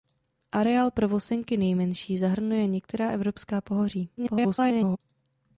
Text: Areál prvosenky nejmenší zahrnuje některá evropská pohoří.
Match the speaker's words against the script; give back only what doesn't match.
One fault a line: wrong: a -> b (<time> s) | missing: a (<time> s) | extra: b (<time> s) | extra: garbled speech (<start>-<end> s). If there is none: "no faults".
extra: garbled speech (4.2-5.0 s)